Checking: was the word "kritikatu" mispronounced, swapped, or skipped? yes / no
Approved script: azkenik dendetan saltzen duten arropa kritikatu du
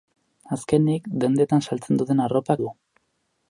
yes